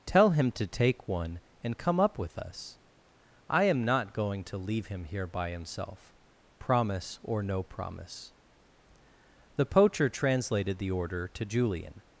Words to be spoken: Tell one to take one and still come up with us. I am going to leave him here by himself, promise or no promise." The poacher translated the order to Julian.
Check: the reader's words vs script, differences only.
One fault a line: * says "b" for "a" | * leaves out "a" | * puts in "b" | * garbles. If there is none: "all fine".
* says "him" for "one"
* leaves out "still"
* puts in "not"